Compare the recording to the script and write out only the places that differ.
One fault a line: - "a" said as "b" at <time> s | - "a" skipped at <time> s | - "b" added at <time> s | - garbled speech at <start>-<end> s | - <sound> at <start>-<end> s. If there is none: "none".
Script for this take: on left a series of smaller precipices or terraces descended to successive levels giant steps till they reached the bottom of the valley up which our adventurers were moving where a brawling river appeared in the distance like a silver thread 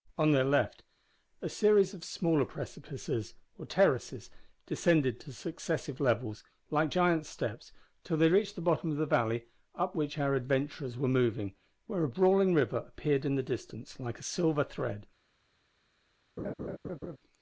- "their" added at 0.3 s
- "like" added at 6.7 s
- laugh at 16.4-17.2 s